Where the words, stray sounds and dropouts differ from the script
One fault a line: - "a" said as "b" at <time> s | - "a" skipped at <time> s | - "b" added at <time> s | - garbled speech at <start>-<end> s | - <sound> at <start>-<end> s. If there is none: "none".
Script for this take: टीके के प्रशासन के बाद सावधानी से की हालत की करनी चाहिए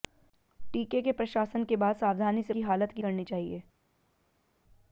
none